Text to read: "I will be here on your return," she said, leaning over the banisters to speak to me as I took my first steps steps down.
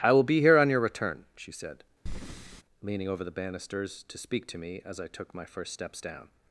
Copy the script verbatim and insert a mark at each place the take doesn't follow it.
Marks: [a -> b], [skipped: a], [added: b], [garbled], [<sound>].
"I will be here on your return," she said, [breath] leaning over the banisters to speak to me as I took my first steps [skipped: steps] down.